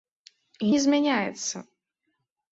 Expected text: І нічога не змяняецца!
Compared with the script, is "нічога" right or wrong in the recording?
wrong